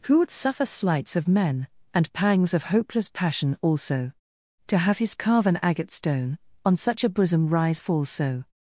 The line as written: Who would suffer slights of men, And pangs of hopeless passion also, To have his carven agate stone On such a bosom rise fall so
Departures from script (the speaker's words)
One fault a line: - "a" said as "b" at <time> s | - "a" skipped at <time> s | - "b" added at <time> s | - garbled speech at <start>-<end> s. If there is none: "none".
none